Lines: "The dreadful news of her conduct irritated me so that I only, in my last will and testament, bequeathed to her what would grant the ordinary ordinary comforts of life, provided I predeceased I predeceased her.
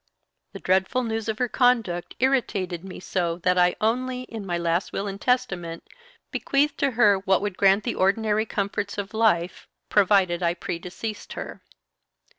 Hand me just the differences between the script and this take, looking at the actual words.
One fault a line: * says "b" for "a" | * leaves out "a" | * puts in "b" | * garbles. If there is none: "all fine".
* leaves out "ordinary"
* leaves out "I predeceased"